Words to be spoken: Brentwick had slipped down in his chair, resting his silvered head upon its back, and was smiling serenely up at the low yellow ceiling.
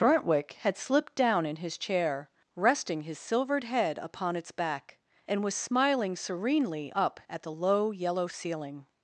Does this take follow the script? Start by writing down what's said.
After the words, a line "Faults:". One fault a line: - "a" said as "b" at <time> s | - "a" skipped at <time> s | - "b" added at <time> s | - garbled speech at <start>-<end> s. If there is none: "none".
Brentwick had slipped down in his chair, resting his silvered head upon its back, and was smiling serenely up at the low yellow ceiling.
Faults:
none